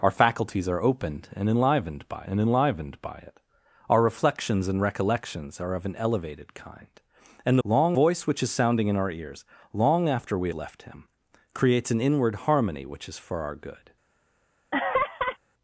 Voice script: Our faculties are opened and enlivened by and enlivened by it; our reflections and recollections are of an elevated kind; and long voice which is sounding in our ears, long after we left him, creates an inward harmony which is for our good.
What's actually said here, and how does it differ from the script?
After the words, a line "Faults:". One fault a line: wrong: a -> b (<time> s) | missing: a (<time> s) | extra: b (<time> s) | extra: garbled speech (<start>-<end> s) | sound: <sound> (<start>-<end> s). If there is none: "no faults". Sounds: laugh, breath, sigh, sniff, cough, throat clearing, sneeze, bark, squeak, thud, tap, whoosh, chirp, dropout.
Our faculties are opened and enlivened by and enlivened by it; our reflections and recollections are of an elevated kind; and long voice which is sounding in our ears, long after we left him, creates an inward harmony which is for our good.
Faults:
sound: laugh (14.7-15.4 s)